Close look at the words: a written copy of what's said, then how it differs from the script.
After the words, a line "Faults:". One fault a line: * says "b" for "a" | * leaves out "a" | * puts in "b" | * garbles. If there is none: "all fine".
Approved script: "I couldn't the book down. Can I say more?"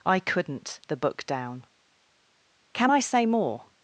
"I couldn't the book down. Can I say more?"
Faults:
all fine